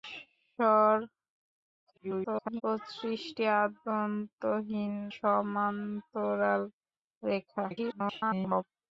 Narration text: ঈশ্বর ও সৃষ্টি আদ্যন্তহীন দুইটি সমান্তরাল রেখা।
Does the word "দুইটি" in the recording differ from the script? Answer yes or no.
yes